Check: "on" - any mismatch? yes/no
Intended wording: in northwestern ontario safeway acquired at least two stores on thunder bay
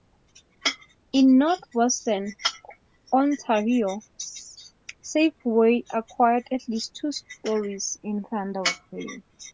yes